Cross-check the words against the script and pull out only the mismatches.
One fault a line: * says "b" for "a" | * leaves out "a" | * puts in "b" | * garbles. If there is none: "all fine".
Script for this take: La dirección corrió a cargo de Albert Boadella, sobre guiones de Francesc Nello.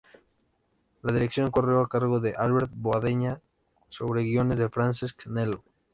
all fine